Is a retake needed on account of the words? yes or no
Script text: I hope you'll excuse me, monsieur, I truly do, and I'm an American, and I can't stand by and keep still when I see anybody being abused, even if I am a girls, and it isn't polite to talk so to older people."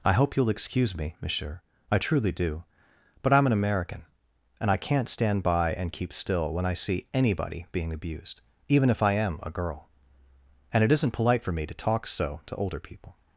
yes